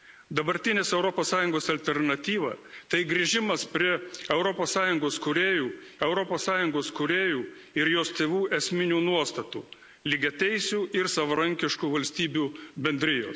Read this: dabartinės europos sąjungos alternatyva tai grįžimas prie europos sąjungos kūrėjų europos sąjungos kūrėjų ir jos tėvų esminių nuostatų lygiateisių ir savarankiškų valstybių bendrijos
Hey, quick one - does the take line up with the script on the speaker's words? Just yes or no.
yes